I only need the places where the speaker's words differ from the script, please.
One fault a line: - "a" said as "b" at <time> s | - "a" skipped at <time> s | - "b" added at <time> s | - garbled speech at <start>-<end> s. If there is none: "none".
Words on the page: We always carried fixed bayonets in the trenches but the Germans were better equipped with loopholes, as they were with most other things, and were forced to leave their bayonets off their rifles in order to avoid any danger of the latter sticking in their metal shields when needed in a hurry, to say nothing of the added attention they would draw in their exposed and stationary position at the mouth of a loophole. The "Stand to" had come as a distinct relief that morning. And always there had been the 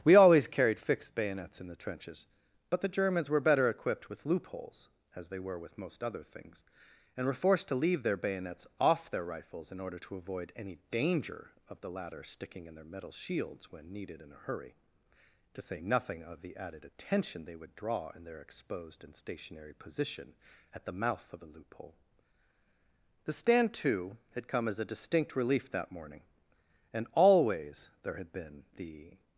none